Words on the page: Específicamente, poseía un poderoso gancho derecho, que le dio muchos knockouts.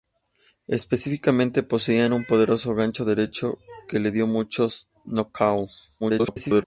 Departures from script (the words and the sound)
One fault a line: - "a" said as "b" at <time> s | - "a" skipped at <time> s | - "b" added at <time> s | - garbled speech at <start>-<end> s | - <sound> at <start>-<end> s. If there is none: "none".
- garbled speech at 6.0-6.6 s